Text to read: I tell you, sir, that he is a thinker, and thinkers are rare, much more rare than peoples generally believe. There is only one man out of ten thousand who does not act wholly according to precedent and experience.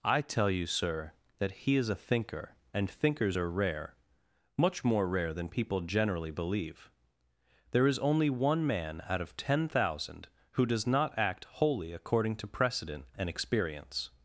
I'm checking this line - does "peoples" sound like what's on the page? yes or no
no